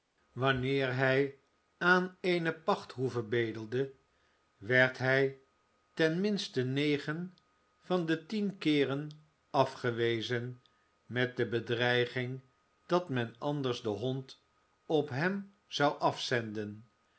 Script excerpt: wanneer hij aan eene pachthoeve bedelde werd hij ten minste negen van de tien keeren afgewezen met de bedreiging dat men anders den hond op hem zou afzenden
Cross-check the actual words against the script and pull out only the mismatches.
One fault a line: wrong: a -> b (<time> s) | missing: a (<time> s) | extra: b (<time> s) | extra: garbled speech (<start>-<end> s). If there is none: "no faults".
no faults